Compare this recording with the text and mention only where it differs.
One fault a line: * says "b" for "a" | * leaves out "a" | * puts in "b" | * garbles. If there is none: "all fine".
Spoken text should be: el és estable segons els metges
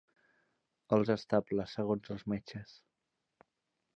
all fine